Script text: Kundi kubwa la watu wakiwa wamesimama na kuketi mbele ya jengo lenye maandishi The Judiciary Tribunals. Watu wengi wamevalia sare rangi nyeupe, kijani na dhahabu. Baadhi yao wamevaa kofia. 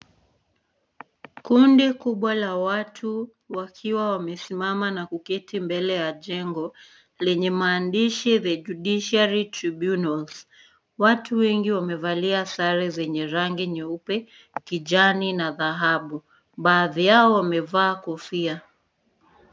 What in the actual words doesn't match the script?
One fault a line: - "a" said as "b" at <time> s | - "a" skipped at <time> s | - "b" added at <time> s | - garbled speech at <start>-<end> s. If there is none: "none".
- "zenye" added at 12.9 s